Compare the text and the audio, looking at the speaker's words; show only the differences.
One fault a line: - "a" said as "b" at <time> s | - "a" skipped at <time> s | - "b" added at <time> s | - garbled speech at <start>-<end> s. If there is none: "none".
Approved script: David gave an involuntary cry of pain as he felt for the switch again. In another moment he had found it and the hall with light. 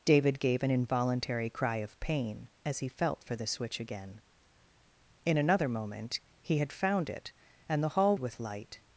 none